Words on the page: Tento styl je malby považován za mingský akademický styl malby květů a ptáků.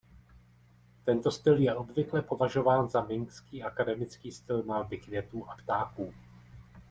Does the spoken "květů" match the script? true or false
true